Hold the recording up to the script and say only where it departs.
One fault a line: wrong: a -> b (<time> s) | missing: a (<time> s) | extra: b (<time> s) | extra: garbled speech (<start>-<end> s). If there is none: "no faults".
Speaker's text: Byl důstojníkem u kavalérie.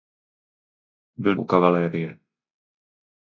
missing: důstojníkem (1.4 s)